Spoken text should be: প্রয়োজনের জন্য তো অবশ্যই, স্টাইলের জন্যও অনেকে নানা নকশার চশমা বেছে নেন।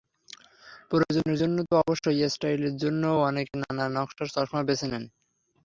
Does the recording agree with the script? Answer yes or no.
yes